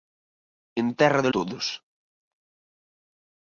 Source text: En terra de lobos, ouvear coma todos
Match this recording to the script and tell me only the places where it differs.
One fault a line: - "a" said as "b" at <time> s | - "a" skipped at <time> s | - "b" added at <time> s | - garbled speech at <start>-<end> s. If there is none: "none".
- "lobos ouvear coma" skipped at 1.3 s